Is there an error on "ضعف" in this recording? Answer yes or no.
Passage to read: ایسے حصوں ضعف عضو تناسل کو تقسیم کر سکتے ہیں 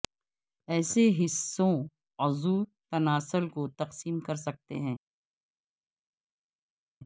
yes